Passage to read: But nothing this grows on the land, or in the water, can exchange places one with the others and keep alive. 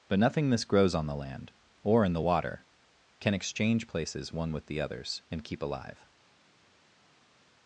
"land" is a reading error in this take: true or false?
false